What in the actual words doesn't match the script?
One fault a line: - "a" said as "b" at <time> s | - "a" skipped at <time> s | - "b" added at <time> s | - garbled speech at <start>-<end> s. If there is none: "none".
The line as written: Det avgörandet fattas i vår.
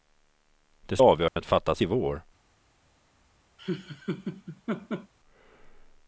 none